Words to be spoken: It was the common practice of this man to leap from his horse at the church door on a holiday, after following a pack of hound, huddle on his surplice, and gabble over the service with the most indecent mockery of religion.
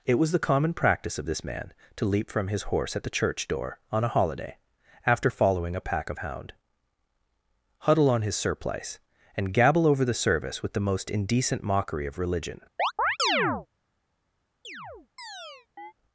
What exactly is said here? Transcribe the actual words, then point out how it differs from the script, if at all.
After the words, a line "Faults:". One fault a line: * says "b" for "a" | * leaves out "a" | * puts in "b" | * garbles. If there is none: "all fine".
It was the common practice of this man to leap from his horse at the church door on a holiday, after following a pack of hound, huddle on his surplice, and gabble over the service with the most indecent mockery of religion.
Faults:
all fine